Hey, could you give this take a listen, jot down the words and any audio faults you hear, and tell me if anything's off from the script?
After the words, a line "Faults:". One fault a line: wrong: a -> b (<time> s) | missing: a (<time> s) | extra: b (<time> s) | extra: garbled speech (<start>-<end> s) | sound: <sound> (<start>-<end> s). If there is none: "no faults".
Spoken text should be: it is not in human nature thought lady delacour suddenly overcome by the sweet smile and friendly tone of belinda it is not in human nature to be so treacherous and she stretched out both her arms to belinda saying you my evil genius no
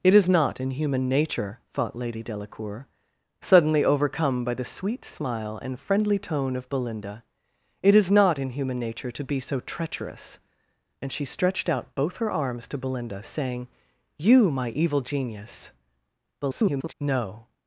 it is not in human nature thought lady delacour suddenly overcome by the sweet smile and friendly tone of belinda it is not in human nature to be so treacherous and she stretched out both her arms to belinda saying you my evil genius [garbled] no
Faults:
extra: garbled speech (16.4-16.9 s)